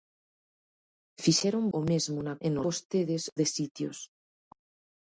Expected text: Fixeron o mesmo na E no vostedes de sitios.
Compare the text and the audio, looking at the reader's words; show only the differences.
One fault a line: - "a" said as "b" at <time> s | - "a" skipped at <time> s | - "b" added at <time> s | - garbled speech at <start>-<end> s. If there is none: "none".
none